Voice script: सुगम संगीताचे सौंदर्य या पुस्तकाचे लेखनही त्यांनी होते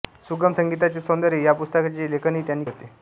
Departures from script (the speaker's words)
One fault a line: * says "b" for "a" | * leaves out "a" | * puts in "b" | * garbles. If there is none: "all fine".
all fine